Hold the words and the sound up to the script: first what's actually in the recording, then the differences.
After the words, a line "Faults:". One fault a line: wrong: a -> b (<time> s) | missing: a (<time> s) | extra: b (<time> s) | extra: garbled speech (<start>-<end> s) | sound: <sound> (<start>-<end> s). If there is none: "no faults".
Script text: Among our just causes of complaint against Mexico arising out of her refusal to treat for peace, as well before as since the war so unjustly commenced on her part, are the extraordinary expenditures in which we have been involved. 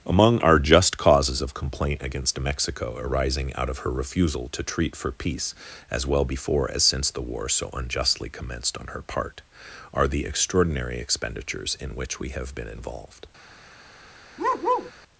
Among our just causes of complaint against Mexico arising out of her refusal to treat for peace, as well before as since the war so unjustly commenced on her part, are the extraordinary expenditures in which we have been involved.
Faults:
sound: bark (14.4-14.9 s)